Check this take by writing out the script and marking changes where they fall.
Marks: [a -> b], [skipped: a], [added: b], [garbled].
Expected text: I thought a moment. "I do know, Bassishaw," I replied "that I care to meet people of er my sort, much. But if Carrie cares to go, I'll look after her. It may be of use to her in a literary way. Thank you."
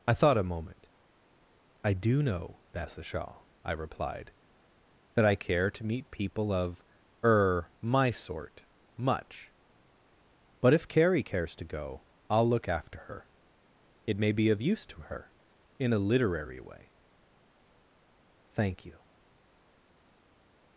I thought a moment. "I do know, Bassishaw," I replied "that I care to meet people of er my sort, much. But if Carrie cares to go, I'll look after her. It may be of use to her in a literary way. Thank you."